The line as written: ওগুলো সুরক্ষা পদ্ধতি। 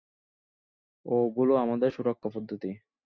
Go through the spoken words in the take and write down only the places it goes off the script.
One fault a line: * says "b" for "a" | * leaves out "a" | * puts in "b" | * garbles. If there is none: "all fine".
* puts in "আমাদের"